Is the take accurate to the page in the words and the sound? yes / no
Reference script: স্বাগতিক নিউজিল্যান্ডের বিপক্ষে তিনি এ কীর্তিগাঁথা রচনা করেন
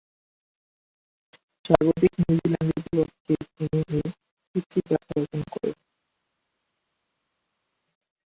yes